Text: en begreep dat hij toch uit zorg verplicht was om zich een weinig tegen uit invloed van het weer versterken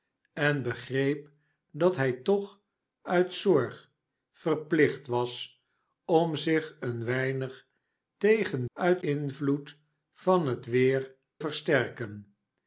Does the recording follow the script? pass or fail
pass